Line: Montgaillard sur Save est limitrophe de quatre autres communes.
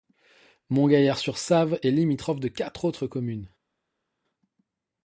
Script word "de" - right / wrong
right